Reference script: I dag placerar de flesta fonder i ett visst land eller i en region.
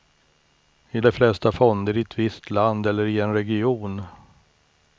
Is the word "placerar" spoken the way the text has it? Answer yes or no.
no